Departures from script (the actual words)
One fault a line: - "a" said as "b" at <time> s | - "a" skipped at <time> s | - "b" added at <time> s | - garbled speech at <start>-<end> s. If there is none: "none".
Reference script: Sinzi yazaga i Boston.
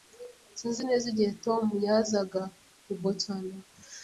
- "neza igihe Tom" added at 0.9 s